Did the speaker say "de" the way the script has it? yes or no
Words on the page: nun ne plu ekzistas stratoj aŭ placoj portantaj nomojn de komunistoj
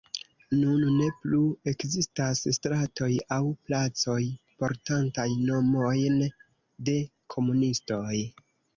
yes